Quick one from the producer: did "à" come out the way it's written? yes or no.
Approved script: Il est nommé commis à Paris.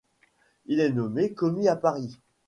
yes